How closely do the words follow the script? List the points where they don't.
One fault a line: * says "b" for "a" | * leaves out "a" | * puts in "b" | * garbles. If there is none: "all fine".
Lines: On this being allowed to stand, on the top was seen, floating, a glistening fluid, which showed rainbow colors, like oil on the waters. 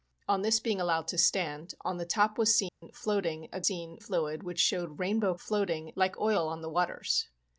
* says "seen" for "glistening"
* says "floating" for "colors"